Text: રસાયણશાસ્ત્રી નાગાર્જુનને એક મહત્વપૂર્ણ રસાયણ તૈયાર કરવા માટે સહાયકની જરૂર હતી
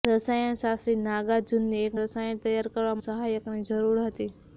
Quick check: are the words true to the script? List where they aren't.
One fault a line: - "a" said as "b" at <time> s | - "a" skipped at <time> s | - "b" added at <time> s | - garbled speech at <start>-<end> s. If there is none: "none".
- "મહત્વપૂર્ણ" skipped at 2.0 s
- "માટે" skipped at 3.0 s